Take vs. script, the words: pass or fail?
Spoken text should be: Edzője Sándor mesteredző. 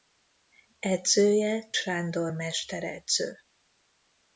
pass